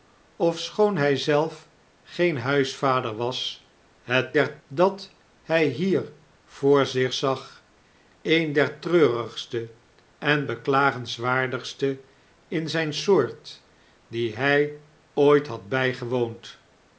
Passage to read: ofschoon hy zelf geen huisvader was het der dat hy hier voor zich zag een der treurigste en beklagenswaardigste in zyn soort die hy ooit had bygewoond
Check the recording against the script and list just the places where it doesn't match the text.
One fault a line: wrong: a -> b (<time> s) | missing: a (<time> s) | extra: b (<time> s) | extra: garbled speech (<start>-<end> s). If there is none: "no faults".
no faults